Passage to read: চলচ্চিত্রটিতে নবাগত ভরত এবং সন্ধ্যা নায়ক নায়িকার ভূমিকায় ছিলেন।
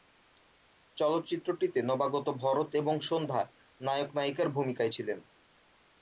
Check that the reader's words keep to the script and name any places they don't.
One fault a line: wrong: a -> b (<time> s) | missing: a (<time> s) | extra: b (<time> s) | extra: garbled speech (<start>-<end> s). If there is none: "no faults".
no faults